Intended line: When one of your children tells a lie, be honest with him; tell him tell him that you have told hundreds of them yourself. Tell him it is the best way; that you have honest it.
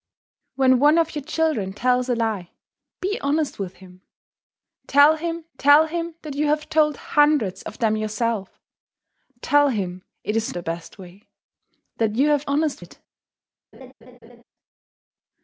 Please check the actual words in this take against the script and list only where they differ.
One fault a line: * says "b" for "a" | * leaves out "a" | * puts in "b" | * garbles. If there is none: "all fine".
all fine